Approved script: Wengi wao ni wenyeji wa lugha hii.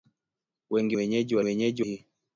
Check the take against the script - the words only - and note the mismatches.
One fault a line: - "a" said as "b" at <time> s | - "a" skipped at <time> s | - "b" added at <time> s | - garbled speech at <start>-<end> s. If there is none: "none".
- "wao ni" skipped at 1.0 s
- "lugha" said as "wenyeji" at 1.4 s